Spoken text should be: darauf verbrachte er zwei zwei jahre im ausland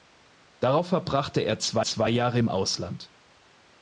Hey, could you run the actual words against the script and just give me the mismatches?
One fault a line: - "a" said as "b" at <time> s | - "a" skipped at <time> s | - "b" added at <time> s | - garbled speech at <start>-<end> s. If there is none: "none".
none